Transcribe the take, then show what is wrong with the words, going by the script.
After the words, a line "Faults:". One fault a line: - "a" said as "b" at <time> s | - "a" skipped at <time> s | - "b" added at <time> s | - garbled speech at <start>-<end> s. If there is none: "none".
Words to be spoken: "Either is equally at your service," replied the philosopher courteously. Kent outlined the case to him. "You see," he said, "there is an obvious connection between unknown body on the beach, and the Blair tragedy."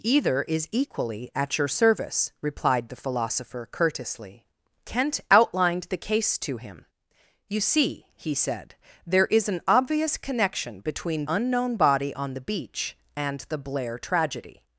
"Either is equally at your service," replied the philosopher courteously. Kent outlined the case to him. "You see," he said, "there is an obvious connection between unknown body on the beach, and the Blair tragedy."
Faults:
none